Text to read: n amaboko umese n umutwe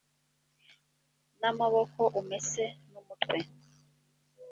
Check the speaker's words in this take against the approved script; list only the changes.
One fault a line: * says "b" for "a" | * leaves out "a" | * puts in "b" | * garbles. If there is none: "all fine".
all fine